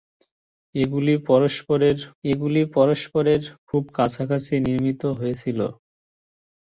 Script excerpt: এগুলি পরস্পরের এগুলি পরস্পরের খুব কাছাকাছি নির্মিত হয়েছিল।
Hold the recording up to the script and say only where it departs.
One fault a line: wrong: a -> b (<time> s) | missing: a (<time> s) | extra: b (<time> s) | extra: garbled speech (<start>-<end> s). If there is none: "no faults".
no faults